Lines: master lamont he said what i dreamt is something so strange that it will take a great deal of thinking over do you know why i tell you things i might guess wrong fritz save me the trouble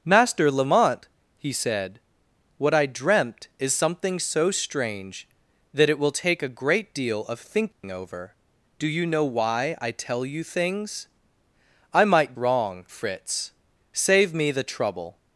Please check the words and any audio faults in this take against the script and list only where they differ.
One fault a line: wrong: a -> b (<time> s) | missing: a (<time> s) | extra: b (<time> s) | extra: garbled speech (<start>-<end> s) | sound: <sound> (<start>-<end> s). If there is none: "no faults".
sound: dropout (7.7-7.8 s)
missing: guess (12.3 s)